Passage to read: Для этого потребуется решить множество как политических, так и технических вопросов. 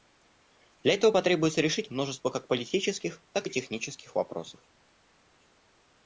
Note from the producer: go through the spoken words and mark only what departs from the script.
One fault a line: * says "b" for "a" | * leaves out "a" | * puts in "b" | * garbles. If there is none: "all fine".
all fine